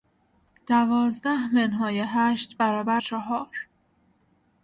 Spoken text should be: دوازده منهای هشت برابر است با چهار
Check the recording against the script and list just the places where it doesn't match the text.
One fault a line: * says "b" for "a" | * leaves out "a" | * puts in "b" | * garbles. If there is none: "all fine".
* leaves out "است با"